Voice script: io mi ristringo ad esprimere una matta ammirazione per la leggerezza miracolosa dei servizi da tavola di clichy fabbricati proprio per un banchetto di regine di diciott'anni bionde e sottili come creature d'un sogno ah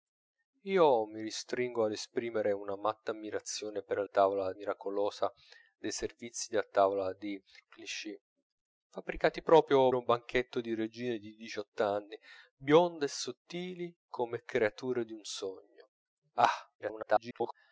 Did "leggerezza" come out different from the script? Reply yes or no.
yes